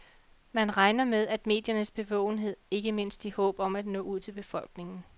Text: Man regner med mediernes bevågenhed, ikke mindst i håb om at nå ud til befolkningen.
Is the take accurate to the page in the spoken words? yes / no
yes